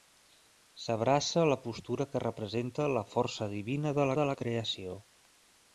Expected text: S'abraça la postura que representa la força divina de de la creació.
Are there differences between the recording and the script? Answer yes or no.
no